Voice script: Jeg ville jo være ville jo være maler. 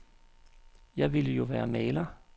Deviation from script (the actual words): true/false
true